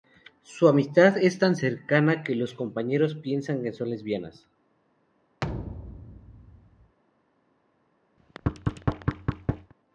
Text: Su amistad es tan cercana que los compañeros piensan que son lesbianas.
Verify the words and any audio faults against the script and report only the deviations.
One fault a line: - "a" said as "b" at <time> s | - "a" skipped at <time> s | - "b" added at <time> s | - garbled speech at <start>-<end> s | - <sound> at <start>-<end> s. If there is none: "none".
- thud at 5.4-7.0 s
- thud at 8.2-9.7 s